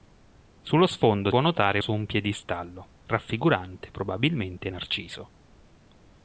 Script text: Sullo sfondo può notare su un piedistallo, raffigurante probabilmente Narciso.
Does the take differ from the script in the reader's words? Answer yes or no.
no